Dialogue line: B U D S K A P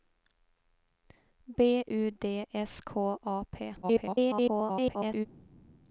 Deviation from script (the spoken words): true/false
true